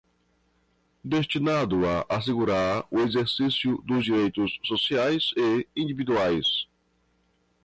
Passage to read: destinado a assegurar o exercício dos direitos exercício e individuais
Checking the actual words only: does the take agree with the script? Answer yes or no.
no